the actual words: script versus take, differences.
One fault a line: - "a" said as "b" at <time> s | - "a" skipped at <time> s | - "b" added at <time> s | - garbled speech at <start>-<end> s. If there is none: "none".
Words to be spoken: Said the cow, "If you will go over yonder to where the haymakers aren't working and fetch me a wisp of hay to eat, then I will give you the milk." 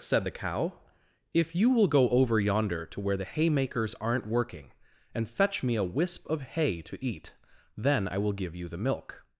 none